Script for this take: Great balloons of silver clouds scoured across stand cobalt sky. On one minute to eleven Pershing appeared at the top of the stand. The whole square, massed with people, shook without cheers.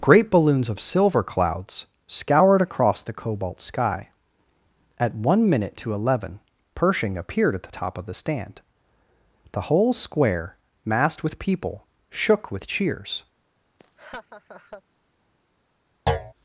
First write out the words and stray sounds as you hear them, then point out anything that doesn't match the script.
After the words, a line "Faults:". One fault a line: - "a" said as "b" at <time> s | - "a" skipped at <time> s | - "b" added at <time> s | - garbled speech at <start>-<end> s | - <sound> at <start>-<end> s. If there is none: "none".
Great balloons of silver clouds scoured across the cobalt sky. At one minute to eleven Pershing appeared at the top of the stand. The whole square, massed with people, shook with cheers.
Faults:
- "stand" said as "the" at 3.0 s
- "On" said as "At" at 5.0 s
- "without" said as "with" at 12.5 s
- laugh at 13.8-14.8 s
- thud at 16.1-16.3 s